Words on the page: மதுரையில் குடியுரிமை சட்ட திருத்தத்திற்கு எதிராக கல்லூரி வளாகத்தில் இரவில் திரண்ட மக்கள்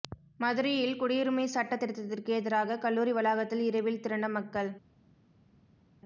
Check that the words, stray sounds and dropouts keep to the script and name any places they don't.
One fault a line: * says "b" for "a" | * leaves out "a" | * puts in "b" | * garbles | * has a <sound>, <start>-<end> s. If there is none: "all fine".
all fine